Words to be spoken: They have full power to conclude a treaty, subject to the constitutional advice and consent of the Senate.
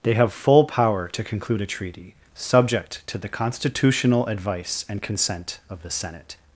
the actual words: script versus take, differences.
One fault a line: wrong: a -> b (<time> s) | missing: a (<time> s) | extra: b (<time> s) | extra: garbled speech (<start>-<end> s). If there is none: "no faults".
no faults